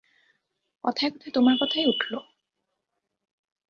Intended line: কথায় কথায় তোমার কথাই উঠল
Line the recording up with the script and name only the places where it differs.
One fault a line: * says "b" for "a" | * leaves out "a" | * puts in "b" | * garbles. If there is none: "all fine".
all fine